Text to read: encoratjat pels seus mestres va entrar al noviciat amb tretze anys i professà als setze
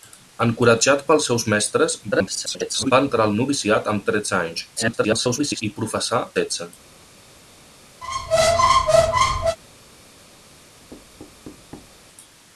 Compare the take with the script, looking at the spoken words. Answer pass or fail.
fail